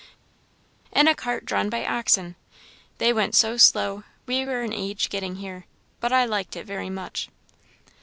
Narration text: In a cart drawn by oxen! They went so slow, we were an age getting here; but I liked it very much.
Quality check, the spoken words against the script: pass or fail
pass